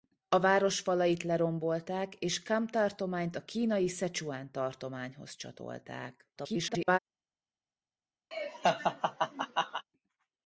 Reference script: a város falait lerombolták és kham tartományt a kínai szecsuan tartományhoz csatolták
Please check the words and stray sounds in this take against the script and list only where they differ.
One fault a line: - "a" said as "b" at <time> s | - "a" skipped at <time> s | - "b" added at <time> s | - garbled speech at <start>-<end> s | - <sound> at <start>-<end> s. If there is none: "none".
- garbled speech at 6.4-7.0 s
- laugh at 8.3-9.8 s